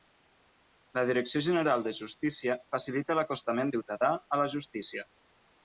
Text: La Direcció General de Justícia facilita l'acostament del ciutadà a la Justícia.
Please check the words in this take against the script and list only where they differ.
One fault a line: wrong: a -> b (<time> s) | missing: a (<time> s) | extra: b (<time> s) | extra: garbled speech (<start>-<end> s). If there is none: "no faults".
missing: del (3.8 s)